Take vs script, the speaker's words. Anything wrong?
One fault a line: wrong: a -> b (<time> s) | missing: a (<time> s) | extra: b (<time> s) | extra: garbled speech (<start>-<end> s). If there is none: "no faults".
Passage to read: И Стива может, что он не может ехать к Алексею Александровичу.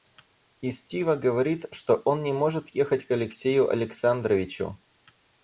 wrong: может -> говорит (1.1 s)